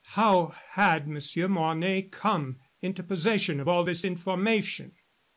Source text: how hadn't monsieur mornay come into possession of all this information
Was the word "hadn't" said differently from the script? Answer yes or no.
yes